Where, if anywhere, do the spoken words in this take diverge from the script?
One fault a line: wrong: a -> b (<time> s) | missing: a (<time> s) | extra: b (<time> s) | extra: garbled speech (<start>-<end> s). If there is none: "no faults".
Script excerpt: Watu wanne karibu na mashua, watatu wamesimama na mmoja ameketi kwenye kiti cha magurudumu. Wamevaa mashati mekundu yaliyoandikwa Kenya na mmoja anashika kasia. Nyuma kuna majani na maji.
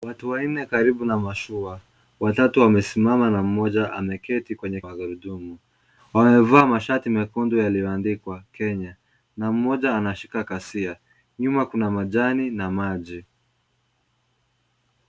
missing: kiti cha (4.8 s)